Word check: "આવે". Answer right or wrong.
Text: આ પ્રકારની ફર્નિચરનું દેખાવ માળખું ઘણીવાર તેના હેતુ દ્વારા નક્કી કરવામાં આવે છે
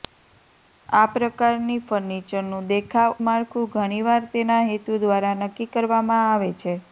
right